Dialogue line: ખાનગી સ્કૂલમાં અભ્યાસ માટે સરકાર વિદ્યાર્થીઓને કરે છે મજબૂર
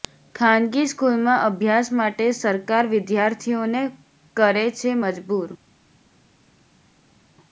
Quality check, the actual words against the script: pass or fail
pass